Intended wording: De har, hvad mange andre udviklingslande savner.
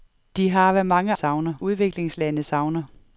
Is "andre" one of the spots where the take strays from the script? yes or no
yes